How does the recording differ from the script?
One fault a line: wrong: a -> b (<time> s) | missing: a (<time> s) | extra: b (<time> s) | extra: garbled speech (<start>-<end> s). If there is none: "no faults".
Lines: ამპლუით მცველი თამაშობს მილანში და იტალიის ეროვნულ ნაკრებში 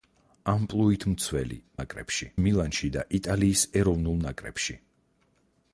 wrong: თამაშობს -> ნაკრებში (1.8 s)